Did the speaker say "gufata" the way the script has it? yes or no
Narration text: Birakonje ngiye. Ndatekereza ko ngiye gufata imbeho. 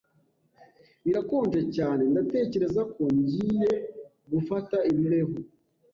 yes